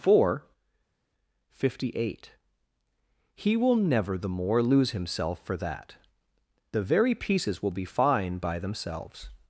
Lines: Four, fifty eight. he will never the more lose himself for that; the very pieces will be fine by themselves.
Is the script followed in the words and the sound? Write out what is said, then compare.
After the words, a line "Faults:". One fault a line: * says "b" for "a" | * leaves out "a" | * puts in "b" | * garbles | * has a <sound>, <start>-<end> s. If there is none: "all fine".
Four, fifty eight. he will never the more lose himself for that; the very pieces will be fine by themselves.
Faults:
all fine